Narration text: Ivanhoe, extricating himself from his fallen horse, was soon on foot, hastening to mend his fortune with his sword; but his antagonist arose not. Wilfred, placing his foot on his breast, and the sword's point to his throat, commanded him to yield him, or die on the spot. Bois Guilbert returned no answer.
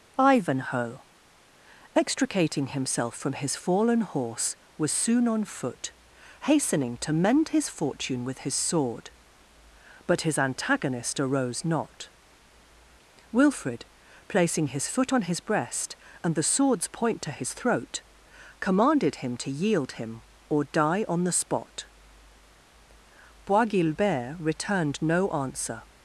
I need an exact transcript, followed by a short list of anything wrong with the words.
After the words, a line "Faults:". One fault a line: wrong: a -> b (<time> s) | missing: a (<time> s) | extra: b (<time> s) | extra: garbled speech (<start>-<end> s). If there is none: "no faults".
Ivanhoe, extricating himself from his fallen horse, was soon on foot, hastening to mend his fortune with his sword; but his antagonist arose not. Wilfred, placing his foot on his breast, and the sword's point to his throat, commanded him to yield him, or die on the spot. Bois Guilbert returned no answer.
Faults:
no faults